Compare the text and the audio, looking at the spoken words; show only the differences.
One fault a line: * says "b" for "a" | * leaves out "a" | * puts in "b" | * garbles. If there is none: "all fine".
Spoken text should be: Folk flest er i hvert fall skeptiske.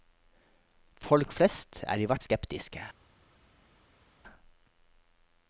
* leaves out "fall"